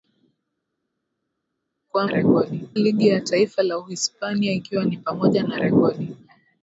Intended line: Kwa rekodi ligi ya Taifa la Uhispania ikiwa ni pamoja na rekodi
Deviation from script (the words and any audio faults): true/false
false